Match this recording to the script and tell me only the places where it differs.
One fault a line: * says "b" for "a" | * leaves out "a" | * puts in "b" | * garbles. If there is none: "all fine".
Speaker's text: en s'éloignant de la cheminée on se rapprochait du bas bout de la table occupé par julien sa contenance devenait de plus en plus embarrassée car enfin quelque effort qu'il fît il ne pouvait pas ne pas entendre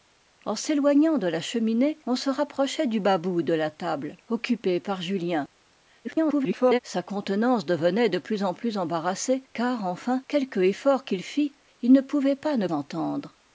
* garbles
* leaves out "pas"